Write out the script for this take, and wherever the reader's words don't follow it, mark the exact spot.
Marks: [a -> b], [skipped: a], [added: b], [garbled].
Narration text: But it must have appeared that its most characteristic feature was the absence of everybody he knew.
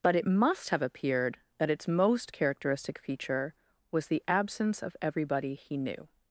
But it must have appeared that its most characteristic feature was the absence of everybody he knew.